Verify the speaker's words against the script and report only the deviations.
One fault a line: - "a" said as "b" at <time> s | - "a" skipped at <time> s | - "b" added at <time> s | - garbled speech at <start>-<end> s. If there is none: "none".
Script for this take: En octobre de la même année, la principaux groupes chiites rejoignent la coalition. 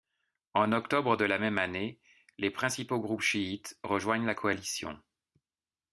- "la" said as "les" at 2.4 s